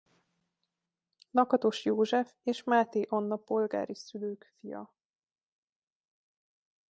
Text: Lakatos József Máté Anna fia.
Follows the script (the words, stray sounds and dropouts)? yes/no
no